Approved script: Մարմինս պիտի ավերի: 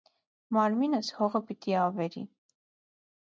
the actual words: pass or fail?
fail